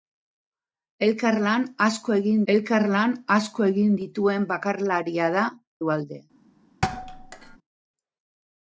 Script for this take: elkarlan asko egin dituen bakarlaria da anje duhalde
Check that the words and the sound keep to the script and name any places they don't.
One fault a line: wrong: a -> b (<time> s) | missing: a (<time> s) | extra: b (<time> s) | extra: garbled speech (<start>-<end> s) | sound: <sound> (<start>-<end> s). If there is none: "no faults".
extra: elkarlan asko egin (2.5 s)
missing: anje (5.4 s)
sound: thud (6.8-7.6 s)